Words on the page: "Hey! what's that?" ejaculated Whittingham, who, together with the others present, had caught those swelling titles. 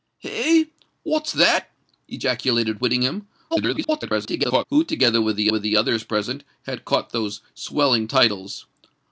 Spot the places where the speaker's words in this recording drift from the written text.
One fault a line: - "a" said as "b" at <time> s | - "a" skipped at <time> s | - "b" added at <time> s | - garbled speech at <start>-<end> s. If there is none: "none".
- garbled speech at 3.5-4.7 s
- "with the" added at 5.5 s